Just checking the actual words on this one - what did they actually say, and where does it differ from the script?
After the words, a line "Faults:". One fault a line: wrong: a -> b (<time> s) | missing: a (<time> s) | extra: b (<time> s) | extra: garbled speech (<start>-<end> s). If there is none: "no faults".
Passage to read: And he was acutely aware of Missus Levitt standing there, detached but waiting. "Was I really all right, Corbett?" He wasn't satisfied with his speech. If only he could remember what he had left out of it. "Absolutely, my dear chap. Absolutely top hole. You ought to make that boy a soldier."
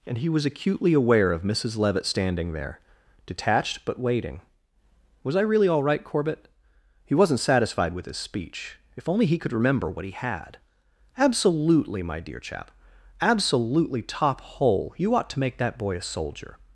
And he was acutely aware of Missus Levitt standing there, detached but waiting. "Was I really all right, Corbett?" He wasn't satisfied with his speech. If only he could remember what he had. "Absolutely, my dear chap. Absolutely top hole. You ought to make that boy a soldier."
Faults:
missing: left out of it (10.6 s)